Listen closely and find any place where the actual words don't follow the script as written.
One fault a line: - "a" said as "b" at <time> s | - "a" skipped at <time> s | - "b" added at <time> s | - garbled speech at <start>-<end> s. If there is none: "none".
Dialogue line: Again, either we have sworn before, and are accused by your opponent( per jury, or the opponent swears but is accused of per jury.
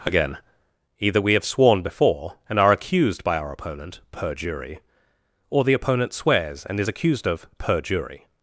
- "your" said as "our" at 3.4 s
- "but" said as "and" at 6.7 s